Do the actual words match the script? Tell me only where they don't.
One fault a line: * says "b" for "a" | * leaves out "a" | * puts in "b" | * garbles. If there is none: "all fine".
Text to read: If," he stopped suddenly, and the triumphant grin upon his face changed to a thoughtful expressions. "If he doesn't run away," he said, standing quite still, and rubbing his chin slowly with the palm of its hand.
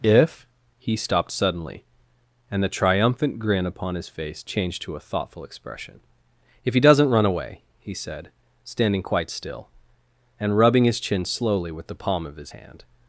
* says "expression" for "expressions"
* says "his" for "its"